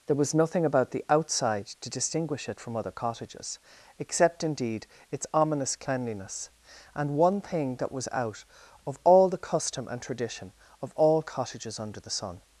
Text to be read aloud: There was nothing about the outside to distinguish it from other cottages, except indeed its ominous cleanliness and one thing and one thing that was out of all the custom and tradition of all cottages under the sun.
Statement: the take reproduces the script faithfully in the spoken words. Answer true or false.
false